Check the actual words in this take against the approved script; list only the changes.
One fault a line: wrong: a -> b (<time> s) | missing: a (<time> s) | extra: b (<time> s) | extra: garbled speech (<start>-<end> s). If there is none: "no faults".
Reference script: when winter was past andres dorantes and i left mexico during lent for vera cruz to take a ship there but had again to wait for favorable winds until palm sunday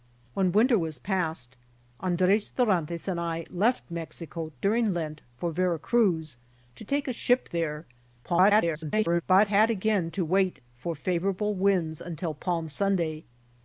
extra: garbled speech (8.2-9.2 s)